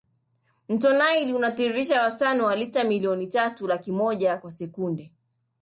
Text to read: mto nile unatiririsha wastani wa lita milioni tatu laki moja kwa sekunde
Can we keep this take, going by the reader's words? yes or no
yes